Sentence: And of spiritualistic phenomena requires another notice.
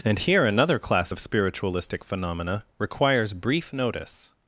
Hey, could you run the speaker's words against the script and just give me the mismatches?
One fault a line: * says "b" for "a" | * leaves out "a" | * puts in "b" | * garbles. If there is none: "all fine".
* puts in "here another class"
* says "brief" for "another"